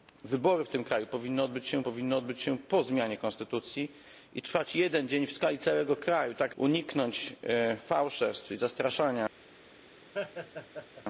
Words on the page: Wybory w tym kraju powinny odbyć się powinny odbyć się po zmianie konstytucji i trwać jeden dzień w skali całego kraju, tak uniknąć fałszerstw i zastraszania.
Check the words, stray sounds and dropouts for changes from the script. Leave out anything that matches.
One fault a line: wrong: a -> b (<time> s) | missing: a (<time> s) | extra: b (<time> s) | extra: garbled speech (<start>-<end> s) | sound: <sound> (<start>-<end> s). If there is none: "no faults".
sound: laugh (10.1-11.1 s)